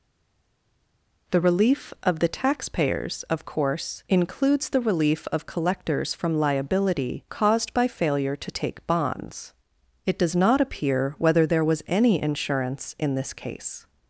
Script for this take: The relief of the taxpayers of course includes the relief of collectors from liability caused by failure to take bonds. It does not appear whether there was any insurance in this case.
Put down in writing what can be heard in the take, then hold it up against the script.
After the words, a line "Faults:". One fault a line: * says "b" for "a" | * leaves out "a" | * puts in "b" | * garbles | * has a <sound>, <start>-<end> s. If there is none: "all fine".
The relief of the taxpayers of course includes the relief of collectors from liability caused by failure to take bonds. It does not appear whether there was any insurance in this case.
Faults:
all fine